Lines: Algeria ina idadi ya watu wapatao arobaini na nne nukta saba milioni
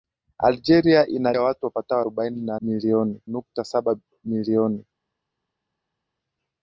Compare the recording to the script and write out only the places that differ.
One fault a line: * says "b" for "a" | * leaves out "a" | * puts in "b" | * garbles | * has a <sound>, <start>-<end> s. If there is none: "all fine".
* leaves out "idadi"
* says "milioni" for "nne"